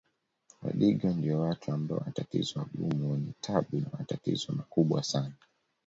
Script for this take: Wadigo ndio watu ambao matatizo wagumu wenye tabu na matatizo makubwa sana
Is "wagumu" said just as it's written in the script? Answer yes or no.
yes